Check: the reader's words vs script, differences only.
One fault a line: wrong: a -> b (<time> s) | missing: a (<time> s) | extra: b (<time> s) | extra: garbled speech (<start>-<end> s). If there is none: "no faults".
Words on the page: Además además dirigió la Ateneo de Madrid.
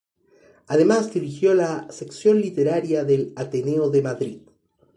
missing: además (1.1 s)
extra: sección literaria del (1.9 s)